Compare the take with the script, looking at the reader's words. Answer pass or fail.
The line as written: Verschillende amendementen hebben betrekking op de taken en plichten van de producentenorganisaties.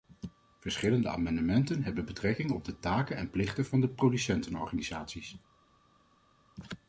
pass